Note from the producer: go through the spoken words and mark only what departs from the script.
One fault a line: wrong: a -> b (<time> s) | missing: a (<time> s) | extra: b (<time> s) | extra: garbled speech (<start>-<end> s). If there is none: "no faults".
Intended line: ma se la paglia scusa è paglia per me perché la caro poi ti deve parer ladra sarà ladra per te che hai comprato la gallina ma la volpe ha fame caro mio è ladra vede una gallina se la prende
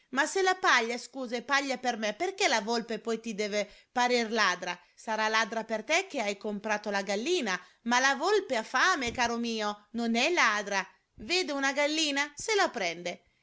wrong: caro -> volpe (2.6 s)
extra: non (9.9 s)